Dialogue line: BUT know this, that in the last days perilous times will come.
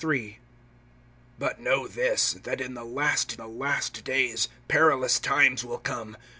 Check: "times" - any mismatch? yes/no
no